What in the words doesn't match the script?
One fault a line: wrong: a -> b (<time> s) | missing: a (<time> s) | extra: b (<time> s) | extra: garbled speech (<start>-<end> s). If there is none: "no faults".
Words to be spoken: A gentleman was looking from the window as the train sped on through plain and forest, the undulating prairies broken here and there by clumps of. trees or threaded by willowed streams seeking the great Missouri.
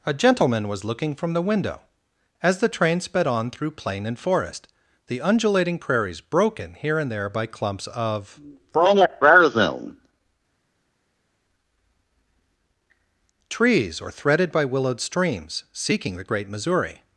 no faults